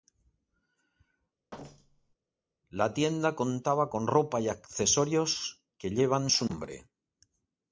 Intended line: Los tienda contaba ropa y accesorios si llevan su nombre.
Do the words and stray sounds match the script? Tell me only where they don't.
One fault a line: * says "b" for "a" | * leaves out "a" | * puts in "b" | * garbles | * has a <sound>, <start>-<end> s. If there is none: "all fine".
* has a thud, 1.5-2.2 s
* says "La" for "Los"
* puts in "con"
* says "que" for "si"